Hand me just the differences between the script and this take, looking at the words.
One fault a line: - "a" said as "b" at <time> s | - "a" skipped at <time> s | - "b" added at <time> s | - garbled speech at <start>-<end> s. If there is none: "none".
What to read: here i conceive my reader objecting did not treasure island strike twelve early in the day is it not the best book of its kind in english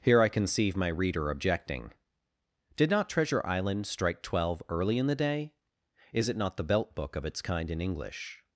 - "best" said as "belt" at 6.6 s